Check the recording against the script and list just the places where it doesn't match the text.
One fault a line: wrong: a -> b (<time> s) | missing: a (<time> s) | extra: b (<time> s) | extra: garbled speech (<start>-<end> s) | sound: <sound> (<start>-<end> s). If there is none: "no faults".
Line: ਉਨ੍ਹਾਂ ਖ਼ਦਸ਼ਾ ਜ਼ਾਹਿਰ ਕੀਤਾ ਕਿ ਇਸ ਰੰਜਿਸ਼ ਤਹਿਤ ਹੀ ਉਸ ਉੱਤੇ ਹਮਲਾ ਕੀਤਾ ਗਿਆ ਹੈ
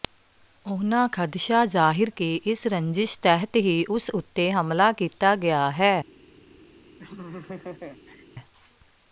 missing: ਕੀਤਾ (2.1 s)
sound: laugh (7.0-8.3 s)